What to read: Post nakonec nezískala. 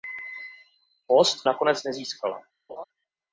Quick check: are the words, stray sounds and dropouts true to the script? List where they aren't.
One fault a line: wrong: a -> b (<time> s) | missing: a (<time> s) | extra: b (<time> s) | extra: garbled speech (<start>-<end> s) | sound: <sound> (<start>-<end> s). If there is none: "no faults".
sound: laugh (2.7-2.8 s)